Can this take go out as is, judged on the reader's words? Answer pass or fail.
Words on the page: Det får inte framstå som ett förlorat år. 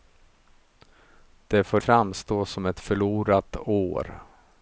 fail